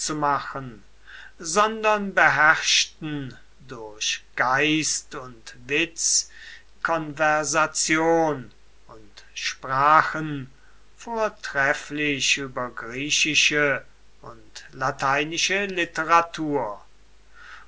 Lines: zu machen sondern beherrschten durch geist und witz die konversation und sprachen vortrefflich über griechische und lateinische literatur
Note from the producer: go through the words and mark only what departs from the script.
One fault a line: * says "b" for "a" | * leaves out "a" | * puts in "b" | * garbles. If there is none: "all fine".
* leaves out "die"